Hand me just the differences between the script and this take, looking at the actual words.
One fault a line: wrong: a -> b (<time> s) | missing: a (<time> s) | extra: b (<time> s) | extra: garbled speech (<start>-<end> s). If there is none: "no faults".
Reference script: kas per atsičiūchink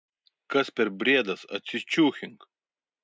extra: briedas (1.0 s)